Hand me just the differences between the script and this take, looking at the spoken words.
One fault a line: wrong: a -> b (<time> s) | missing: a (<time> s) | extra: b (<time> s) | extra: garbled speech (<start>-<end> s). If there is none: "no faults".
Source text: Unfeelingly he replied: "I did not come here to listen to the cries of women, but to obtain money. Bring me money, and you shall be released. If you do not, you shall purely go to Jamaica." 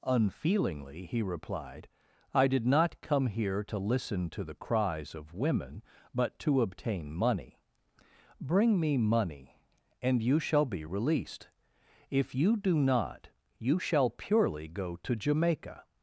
no faults